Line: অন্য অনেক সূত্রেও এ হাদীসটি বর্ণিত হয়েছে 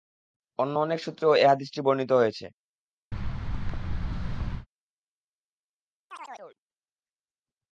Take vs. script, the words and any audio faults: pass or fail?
fail